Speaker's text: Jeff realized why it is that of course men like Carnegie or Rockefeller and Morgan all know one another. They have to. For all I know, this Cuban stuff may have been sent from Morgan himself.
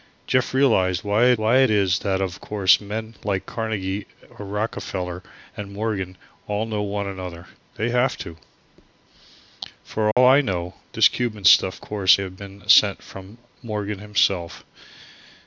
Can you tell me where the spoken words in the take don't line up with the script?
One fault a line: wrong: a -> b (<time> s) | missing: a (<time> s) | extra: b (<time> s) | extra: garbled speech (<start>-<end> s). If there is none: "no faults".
extra: why it (1.4 s)
wrong: may -> course (11.8 s)